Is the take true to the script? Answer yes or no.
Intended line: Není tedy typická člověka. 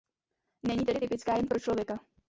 no